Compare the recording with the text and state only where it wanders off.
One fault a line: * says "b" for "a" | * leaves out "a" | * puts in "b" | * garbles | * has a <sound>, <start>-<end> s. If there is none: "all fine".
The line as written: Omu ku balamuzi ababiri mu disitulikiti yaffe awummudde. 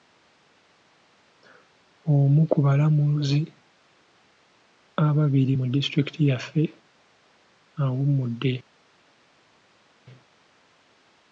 all fine